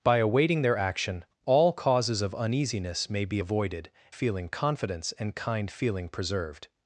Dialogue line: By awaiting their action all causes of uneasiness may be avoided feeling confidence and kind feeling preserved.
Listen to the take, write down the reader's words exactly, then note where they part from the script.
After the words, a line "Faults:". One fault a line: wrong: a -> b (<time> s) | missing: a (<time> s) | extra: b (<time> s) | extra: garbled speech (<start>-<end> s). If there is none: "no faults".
By awaiting their action all causes of uneasiness may be avoided feeling confidence and kind feeling preserved.
Faults:
no faults